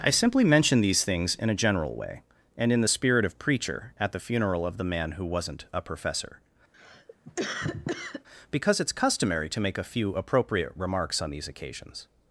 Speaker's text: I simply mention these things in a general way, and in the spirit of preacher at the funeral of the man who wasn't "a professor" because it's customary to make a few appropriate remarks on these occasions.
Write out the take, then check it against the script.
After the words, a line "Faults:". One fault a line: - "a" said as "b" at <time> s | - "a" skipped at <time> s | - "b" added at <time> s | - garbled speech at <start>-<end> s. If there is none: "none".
I simply mention these things in a general way, and in the spirit of preacher at the funeral of the man who wasn't "a professor" because it's customary to make a few appropriate remarks on these occasions.
Faults:
none